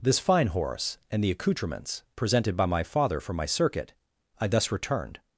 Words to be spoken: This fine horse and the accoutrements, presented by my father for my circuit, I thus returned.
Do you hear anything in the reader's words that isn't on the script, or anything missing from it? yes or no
no